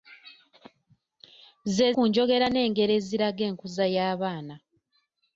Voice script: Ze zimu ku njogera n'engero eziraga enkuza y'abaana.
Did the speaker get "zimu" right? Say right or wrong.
wrong